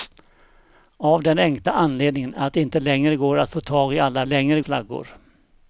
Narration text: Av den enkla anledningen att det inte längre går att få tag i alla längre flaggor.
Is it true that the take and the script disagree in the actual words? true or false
false